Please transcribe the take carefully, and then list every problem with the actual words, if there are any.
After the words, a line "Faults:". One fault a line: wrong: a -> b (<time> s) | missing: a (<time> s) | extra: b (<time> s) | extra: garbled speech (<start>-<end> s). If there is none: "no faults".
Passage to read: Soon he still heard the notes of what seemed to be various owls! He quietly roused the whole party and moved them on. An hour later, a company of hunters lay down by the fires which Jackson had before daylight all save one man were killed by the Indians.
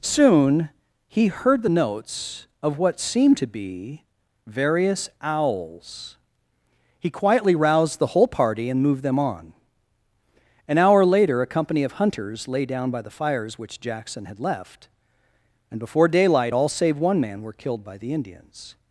Soon he heard the notes of what seemed to be various owls! He quietly roused the whole party and moved them on. An hour later, a company of hunters lay down by the fires which Jackson had left, and before daylight all save one man were killed by the Indians.
Faults:
missing: still (1.3 s)
extra: left and (14.4 s)